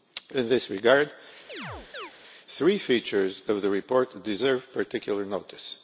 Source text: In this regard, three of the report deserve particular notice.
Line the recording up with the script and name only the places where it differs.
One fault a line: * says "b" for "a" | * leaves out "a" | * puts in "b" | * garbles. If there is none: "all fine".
* puts in "features"